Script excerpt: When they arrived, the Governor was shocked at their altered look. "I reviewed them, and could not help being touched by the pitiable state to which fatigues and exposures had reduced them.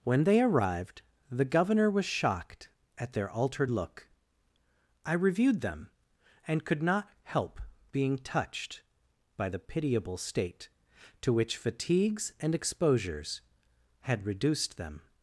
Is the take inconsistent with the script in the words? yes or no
no